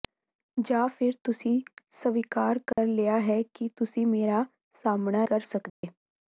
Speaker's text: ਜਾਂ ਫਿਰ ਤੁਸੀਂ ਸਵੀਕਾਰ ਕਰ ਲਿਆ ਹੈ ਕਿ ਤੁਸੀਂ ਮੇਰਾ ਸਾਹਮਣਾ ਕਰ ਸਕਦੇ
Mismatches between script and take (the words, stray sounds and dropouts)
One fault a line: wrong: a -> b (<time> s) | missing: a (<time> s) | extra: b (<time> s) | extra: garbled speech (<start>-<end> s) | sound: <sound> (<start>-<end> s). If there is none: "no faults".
sound: dropout (2.7-2.8 s)
sound: dropout (5.7-5.8 s)